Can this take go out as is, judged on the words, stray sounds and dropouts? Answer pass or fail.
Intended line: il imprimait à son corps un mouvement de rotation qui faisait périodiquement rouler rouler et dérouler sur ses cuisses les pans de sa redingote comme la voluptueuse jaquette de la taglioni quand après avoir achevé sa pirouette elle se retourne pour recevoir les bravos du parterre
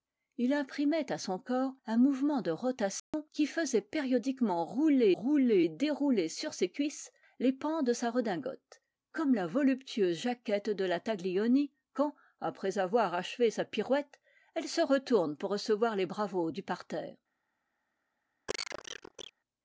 fail